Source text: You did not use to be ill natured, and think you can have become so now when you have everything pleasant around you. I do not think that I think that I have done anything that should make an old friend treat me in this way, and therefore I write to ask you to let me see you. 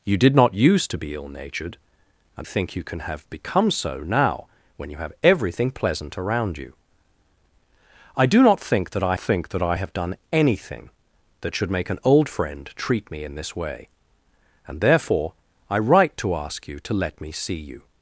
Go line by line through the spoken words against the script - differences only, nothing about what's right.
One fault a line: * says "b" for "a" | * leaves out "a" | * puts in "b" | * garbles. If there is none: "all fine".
all fine